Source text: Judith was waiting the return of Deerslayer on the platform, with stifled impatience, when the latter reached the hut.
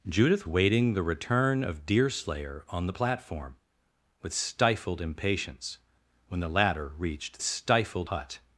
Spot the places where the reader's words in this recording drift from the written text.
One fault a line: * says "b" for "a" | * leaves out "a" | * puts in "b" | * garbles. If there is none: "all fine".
* leaves out "was"
* says "stifled" for "the"